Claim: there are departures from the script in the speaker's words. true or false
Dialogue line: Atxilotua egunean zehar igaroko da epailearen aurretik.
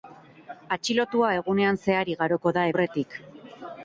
true